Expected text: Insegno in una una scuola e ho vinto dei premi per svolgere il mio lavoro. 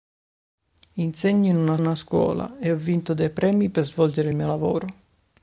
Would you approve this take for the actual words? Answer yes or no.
yes